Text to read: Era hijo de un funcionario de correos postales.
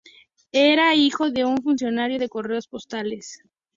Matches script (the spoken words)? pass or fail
pass